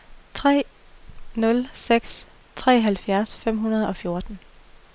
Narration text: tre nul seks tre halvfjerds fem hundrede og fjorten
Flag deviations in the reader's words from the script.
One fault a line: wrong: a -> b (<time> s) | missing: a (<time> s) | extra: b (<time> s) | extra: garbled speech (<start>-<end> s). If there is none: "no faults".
no faults